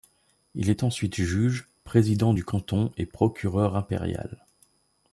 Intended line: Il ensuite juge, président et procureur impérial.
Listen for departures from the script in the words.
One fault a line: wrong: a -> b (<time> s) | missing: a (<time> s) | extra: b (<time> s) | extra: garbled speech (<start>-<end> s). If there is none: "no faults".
extra: est (0.7 s)
extra: du canton (2.3 s)